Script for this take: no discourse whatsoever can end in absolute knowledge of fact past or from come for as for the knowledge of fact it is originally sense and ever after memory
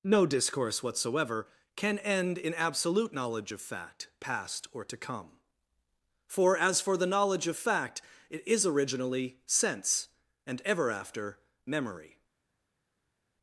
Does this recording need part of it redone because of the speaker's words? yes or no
yes